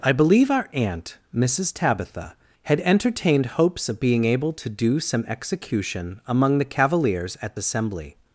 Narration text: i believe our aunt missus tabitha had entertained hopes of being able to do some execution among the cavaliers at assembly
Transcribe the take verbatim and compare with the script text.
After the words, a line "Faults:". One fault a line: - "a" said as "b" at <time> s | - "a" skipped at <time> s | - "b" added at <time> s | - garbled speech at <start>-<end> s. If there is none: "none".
i believe our aunt missus tabitha had entertained hopes of being able to do some execution among the cavaliers at assembly
Faults:
none